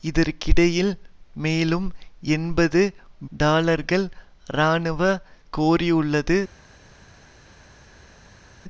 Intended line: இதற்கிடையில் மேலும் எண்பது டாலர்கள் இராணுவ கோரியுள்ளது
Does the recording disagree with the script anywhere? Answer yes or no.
no